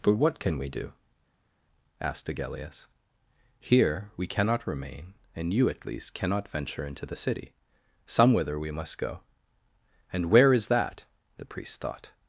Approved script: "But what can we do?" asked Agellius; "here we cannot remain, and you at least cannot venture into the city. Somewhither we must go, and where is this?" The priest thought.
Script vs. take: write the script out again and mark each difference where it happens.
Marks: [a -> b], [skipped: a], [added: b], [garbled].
"But what can we do?" asked Agellius; "here we cannot remain, and you at least cannot venture into the city. Somewhither we must go, and where is [this?" -> that] The priest thought.